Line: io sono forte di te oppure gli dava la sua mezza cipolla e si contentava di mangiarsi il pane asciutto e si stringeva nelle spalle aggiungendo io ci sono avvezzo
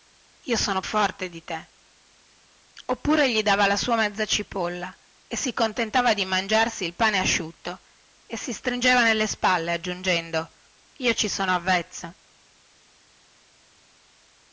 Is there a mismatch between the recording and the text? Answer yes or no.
no